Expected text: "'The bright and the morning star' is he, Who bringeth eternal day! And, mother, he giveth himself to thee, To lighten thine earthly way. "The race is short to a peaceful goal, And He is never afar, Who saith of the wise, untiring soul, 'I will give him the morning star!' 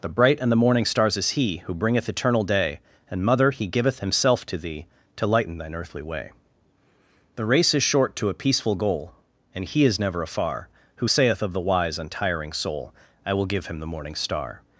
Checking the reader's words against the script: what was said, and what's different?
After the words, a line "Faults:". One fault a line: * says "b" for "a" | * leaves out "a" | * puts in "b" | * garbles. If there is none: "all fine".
"'The bright and the morning stars' is he, Who bringeth eternal day! And, mother, he giveth himself to thee, To lighten thine earthly way. "The race is short to a peaceful goal, And He is never afar, Who saith of the wise, untiring soul, 'I will give him the morning star!'
Faults:
* says "stars" for "star"